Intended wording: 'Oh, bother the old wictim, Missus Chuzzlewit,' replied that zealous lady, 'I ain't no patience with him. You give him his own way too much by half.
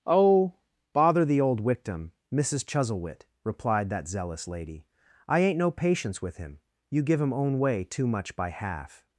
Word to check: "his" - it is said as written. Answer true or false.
false